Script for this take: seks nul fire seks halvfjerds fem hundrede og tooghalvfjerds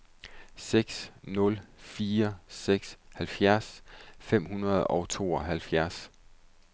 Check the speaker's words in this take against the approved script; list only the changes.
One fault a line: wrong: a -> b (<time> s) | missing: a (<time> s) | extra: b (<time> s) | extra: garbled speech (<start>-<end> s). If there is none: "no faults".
no faults